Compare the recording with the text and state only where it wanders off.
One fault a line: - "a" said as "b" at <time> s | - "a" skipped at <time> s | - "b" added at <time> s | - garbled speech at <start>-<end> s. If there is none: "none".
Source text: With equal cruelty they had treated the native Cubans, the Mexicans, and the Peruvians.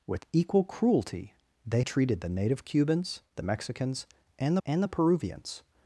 - "had" skipped at 1.8 s
- "and" added at 4.6 s